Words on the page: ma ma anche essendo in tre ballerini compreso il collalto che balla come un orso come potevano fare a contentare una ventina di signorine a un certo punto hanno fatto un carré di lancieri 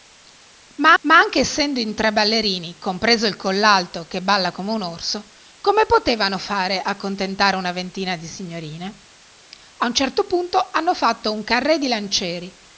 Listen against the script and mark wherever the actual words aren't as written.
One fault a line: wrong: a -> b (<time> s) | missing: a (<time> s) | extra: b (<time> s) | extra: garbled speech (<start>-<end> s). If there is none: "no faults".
no faults